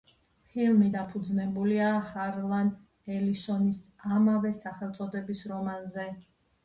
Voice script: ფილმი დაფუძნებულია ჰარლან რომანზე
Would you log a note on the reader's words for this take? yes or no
yes